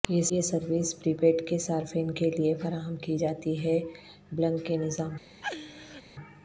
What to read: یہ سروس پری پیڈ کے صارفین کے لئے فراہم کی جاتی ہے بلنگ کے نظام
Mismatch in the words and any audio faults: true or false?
true